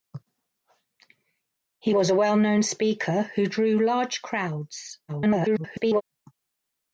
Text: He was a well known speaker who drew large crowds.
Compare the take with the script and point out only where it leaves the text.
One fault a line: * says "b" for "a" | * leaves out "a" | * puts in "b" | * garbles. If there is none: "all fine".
* garbles